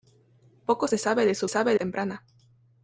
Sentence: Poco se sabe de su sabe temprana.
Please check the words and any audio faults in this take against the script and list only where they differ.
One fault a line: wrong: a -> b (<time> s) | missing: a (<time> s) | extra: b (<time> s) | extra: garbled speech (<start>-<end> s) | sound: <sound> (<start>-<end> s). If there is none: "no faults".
no faults